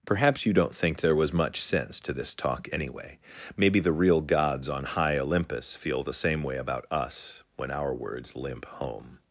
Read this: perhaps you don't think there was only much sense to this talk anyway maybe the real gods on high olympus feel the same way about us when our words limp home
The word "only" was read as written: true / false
false